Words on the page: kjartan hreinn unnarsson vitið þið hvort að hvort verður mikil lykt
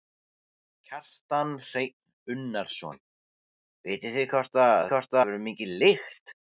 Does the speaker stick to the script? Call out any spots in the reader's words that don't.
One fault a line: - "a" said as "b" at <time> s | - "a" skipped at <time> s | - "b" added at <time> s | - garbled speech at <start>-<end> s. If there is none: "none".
none